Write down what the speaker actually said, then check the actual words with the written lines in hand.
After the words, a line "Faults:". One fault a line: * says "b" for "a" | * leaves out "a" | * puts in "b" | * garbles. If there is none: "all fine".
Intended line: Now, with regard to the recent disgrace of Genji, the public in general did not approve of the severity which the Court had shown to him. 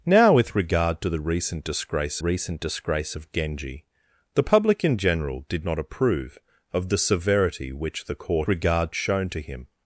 Now, with regard to the recent disgrace recent disgrace of Genji, the public in general did not approve of the severity which the Court regard shown to him.
Faults:
* puts in "recent disgrace"
* says "regard" for "had"